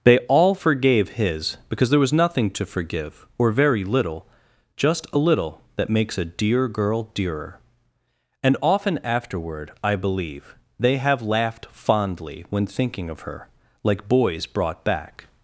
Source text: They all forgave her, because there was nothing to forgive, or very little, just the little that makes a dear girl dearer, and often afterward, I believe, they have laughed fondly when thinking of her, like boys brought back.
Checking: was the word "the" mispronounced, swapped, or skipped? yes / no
yes